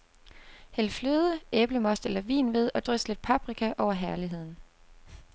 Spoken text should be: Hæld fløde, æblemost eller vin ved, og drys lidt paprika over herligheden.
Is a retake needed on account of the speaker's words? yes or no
no